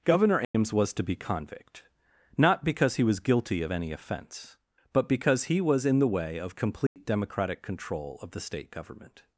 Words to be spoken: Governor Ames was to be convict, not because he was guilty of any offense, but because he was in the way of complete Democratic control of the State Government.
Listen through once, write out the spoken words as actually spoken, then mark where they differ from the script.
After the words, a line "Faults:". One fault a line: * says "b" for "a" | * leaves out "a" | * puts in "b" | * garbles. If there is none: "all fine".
Governor Ames was to be convict, not because he was guilty of any offense, but because he was in the way of complete Democratic control of the State Government.
Faults:
all fine